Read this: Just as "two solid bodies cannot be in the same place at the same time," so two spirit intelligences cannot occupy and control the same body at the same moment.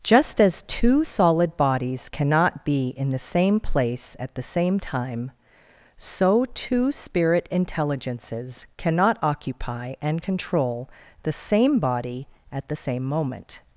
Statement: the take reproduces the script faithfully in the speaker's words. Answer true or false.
true